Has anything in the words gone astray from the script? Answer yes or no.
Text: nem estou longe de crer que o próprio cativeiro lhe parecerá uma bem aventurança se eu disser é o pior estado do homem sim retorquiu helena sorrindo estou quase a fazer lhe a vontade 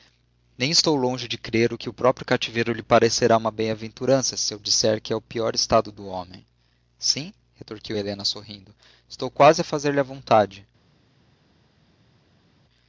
yes